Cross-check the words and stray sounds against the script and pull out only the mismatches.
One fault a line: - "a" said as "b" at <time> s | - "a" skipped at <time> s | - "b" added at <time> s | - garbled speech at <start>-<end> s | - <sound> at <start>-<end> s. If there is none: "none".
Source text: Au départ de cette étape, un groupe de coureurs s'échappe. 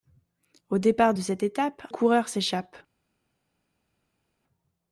- "un groupe de" skipped at 1.9 s